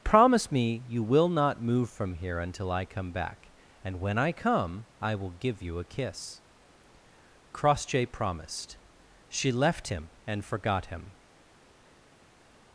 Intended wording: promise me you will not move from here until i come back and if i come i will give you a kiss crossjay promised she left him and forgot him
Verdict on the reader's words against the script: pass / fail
fail